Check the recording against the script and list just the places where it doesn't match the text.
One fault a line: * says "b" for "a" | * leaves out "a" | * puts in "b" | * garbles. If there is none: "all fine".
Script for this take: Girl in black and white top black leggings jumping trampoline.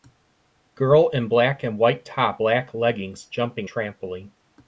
all fine